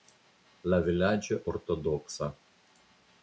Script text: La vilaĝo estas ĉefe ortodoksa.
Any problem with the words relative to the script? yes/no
yes